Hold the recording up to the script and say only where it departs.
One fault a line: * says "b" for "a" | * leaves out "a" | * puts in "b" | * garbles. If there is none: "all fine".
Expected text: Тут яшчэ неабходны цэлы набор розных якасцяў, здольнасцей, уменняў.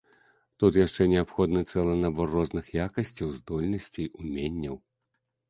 all fine